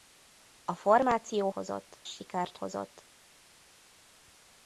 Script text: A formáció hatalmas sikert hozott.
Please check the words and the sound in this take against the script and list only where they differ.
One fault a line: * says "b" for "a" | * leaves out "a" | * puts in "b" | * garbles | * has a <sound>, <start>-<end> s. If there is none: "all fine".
* says "hozott" for "hatalmas"